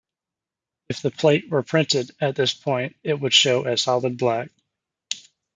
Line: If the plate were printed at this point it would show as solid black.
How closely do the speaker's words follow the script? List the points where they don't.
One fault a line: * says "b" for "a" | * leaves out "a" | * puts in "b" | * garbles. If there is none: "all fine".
all fine